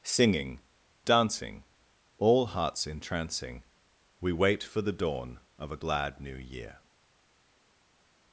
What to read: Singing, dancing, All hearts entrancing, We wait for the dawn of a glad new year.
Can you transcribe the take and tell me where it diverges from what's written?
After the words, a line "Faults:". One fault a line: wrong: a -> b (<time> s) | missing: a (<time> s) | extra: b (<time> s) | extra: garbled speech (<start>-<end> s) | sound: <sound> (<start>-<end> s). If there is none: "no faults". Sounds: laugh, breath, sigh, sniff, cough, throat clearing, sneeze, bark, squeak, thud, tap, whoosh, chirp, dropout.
Singing, dancing, All hearts entrancing, We wait for the dawn of a glad new year.
Faults:
no faults